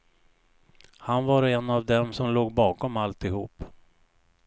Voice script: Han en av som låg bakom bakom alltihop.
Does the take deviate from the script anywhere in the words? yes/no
yes